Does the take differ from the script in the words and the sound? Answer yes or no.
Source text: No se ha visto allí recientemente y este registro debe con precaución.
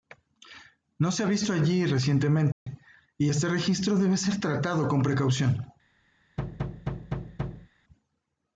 yes